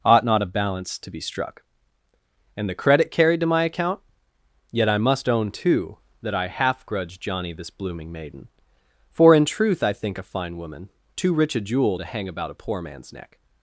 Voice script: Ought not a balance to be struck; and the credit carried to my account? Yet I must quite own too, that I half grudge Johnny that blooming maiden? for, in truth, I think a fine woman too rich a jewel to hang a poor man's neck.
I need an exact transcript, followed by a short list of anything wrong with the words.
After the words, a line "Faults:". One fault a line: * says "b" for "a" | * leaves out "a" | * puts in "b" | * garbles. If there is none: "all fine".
Ought not a balance to be struck; and the credit carried to my account? Yet I must own too, that I half grudge Johnny this blooming maiden? for, in truth, I think a fine woman too rich a jewel to hang about a poor man's neck.
Faults:
* leaves out "quite"
* says "this" for "that"
* puts in "about"